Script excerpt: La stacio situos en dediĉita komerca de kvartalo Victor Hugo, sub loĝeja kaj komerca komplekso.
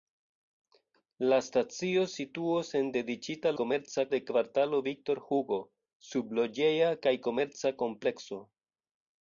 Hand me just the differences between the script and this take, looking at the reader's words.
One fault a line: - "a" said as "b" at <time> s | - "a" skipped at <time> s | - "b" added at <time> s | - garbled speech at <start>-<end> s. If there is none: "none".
none